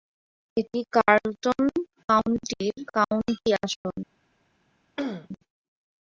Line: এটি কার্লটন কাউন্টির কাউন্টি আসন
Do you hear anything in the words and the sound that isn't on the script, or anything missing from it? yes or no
yes